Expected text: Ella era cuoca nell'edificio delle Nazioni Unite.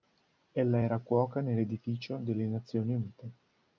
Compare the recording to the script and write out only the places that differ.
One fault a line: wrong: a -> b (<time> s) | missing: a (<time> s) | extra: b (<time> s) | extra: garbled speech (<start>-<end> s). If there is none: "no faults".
no faults